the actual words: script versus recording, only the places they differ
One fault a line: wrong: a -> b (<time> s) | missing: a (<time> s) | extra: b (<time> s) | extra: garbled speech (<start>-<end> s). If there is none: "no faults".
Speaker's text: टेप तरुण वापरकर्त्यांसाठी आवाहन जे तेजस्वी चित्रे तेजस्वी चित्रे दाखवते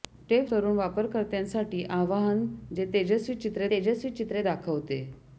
no faults